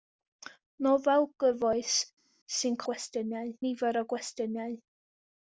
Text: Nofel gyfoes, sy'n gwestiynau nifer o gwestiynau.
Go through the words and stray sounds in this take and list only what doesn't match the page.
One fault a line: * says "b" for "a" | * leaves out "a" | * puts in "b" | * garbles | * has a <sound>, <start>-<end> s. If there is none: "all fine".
all fine